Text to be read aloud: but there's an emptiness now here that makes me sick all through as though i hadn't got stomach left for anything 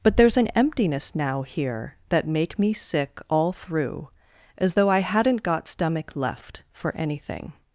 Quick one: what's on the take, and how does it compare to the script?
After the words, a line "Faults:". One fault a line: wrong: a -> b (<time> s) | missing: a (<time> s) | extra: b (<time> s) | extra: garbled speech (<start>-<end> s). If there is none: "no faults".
but there's an emptiness now here that make me sick all through as though i hadn't got stomach left for anything
Faults:
wrong: makes -> make (2.3 s)